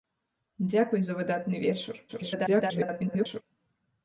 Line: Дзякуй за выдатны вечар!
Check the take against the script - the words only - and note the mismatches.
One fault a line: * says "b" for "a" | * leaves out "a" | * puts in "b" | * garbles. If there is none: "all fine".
* garbles